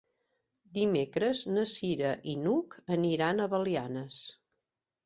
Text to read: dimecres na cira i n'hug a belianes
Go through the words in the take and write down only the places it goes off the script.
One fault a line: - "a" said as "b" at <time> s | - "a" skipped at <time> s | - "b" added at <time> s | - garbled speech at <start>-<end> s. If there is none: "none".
- "aniran" added at 3.0 s